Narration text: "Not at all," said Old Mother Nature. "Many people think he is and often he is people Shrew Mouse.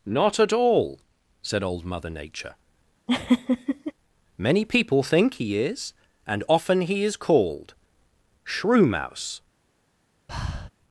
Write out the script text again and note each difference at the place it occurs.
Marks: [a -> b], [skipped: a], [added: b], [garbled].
"Not at all," said Old Mother Nature. "Many people think he is and often he is [people -> called] Shrew Mouse.